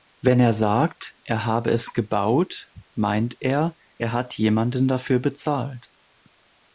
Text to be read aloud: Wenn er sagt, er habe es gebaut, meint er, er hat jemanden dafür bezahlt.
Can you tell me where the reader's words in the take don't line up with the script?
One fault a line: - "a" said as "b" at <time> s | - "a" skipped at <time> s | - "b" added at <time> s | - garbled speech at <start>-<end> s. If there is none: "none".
none